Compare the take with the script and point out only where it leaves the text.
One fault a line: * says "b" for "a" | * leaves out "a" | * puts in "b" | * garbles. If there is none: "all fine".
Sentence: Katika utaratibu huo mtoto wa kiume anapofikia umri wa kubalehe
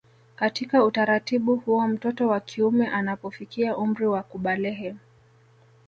all fine